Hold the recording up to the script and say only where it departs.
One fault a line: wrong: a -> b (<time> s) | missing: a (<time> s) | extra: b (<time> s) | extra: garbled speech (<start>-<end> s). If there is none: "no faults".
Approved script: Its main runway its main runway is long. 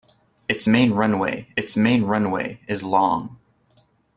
no faults